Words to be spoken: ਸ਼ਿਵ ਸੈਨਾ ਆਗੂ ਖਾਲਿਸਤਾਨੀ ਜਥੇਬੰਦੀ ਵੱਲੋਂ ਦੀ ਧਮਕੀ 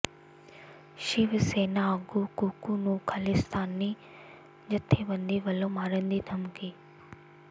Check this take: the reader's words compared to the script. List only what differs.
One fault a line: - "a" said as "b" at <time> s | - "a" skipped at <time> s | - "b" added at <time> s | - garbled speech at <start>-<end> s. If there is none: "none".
- "ਕੁੱਕੂ ਨੂੰ" added at 2.4 s
- "ਮਾਰਨ" added at 5.7 s